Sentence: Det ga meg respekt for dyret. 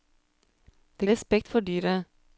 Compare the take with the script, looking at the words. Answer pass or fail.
fail